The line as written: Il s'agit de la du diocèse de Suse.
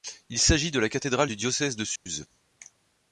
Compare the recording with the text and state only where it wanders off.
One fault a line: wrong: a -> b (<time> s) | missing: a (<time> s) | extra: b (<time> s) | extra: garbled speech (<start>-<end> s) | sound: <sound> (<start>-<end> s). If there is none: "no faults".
extra: cathédrale (0.9 s)
sound: dropout (2.0-2.1 s)